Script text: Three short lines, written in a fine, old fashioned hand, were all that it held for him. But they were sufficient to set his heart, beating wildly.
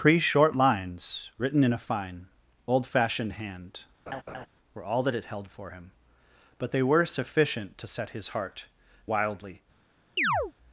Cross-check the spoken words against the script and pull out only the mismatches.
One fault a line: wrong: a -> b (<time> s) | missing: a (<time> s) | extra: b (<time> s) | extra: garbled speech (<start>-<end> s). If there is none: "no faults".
missing: beating (8.6 s)